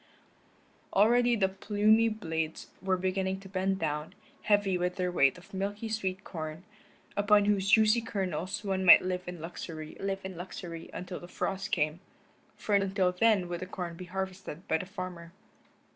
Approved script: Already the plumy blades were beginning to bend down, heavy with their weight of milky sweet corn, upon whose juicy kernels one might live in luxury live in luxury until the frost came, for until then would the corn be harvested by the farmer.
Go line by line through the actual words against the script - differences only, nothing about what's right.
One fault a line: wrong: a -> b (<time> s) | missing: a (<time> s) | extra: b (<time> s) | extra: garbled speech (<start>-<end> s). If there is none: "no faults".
no faults